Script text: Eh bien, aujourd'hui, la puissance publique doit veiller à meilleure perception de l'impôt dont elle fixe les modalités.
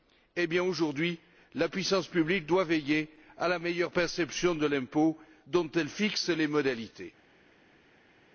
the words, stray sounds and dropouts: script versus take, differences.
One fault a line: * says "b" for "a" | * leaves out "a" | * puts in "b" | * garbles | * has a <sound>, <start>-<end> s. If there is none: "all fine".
* puts in "la"